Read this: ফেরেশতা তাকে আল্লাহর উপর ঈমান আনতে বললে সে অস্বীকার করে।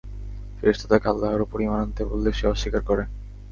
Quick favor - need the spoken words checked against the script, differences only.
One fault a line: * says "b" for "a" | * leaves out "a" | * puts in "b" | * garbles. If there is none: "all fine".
all fine